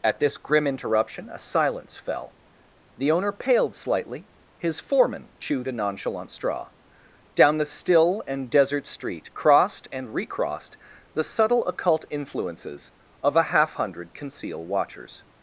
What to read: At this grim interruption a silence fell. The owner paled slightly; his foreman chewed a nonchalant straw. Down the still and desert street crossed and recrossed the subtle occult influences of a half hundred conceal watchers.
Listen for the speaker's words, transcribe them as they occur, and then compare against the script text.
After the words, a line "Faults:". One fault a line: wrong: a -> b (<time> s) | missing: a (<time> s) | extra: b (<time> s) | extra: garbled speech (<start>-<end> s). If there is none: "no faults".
At this grim interruption a silence fell. The owner paled slightly; his foreman chewed a nonchalant straw. Down the still and desert street crossed and recrossed the subtle occult influences of a half hundred conceal watchers.
Faults:
no faults